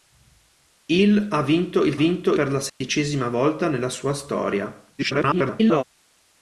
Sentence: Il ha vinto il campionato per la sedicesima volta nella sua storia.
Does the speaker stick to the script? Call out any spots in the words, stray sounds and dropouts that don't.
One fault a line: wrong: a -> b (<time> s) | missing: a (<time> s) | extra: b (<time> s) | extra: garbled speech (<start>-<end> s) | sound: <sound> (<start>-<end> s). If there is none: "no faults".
wrong: campionato -> vinto (1.9 s)
sound: dropout (2.7-2.8 s)
extra: garbled speech (5.0-5.8 s)